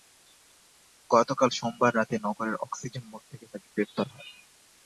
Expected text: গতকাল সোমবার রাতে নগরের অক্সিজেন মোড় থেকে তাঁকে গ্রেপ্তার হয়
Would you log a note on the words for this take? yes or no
no